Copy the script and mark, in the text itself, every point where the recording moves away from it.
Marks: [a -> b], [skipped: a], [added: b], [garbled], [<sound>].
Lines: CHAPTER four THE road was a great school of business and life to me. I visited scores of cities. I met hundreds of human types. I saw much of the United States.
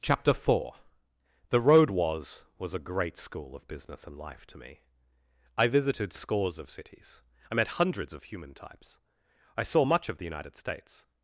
CHAPTER four THE road was [added: was] a great school of business and life to me. I visited scores of cities. I met hundreds of human types. I saw much of the United States.